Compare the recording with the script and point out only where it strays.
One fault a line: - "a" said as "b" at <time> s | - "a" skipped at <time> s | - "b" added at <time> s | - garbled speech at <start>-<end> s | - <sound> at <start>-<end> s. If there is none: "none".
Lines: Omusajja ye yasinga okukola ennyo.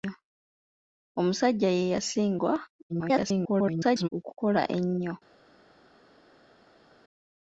- garbled speech at 2.9-4.1 s